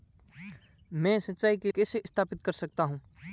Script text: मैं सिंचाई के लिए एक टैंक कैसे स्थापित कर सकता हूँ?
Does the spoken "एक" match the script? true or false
false